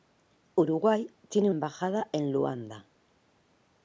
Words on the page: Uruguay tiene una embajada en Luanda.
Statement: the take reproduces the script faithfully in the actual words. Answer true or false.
false